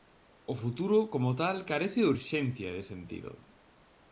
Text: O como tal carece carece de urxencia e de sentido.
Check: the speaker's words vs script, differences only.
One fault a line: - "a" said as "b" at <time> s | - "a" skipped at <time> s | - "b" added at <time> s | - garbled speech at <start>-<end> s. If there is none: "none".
- "futuro" added at 0.6 s
- "carece" skipped at 2.0 s